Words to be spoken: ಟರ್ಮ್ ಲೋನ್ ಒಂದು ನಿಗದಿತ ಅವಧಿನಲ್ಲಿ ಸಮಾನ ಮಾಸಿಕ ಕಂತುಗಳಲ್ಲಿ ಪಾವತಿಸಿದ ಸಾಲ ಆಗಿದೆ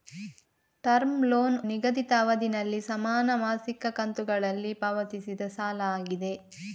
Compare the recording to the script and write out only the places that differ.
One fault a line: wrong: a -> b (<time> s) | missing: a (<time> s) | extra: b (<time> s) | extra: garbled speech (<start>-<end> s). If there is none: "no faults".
missing: ಒಂದು (1.6 s)